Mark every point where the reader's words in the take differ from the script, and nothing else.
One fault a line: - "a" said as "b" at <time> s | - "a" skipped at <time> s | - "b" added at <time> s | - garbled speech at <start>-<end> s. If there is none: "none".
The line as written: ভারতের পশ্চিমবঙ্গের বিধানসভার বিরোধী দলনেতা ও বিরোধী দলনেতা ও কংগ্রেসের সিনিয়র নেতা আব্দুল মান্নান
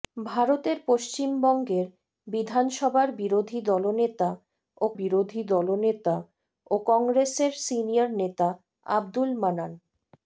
none